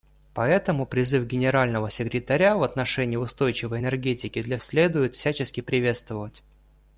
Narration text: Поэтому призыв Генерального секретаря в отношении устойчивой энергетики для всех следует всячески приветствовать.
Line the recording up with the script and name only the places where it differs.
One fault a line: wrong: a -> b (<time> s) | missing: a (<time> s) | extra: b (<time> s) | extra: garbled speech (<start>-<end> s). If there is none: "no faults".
missing: всех (4.6 s)